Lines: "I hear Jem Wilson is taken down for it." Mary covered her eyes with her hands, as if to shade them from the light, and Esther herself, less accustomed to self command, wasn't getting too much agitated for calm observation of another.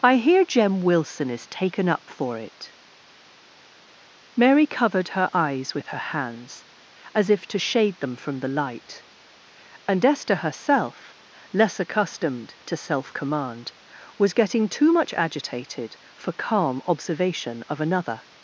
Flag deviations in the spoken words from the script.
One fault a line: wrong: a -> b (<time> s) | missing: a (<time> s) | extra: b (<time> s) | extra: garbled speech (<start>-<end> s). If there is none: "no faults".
wrong: down -> up (1.9 s)
wrong: wasn't -> was (14.2 s)